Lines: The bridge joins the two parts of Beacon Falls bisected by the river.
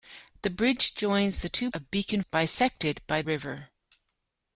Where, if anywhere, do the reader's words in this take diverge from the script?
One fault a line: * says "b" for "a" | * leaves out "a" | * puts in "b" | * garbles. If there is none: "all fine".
* leaves out "parts"
* leaves out "Falls"
* leaves out "the"